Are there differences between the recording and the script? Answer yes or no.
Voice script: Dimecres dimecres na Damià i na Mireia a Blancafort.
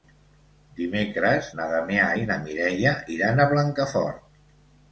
yes